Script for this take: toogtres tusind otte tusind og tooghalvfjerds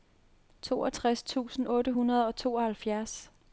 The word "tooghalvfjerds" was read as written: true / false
true